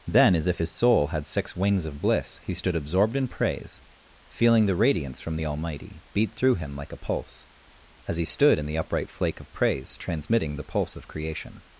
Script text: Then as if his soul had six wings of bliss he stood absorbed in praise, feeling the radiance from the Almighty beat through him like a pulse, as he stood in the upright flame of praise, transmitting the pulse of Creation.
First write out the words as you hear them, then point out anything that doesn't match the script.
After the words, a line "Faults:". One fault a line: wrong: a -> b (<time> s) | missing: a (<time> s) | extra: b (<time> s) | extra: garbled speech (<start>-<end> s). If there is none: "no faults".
Then as if his soul had six wings of bliss he stood absorbed in praise, feeling the radiance from the Almighty beat through him like a pulse, as he stood in the upright flake of praise, transmitting the pulse of Creation.
Faults:
wrong: flame -> flake (9.1 s)